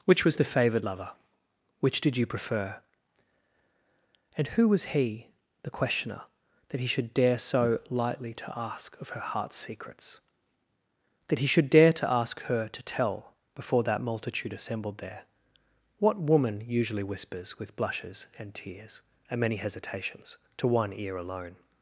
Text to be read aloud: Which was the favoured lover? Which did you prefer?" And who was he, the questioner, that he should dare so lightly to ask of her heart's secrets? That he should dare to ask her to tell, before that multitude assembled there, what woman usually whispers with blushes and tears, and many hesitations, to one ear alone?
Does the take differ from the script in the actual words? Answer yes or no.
no